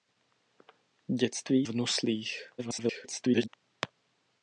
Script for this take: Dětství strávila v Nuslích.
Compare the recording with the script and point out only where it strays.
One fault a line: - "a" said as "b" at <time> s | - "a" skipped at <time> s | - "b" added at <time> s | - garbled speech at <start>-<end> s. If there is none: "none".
- "strávila" skipped at 1.7 s
- garbled speech at 2.6-3.5 s